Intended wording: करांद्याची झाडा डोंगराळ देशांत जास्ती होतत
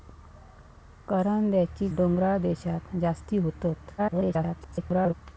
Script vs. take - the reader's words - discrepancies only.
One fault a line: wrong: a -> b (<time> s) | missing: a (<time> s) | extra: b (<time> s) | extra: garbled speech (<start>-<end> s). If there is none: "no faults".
missing: झाडा (1.9 s)
extra: garbled speech (4.0-5.1 s)